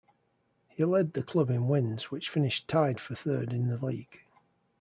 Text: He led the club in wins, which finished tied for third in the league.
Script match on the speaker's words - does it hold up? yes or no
yes